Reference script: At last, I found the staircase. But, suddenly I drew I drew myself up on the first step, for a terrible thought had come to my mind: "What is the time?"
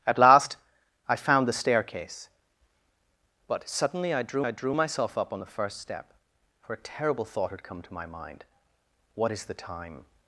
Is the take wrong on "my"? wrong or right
right